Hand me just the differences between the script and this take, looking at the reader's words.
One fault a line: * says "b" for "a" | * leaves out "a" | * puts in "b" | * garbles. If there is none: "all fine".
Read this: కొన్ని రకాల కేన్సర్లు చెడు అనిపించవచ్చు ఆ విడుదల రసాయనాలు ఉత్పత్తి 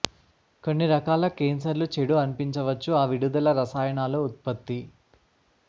all fine